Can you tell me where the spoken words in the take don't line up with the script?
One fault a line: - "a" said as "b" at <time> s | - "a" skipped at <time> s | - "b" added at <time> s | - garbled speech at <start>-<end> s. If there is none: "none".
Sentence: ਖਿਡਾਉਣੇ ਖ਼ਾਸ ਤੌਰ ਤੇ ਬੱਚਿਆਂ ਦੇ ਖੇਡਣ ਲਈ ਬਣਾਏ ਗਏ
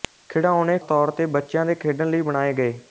- "ਖ਼ਾਸ" skipped at 0.8 s